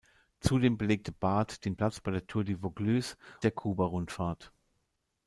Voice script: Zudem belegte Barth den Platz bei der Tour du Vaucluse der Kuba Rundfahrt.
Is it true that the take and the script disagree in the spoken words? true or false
false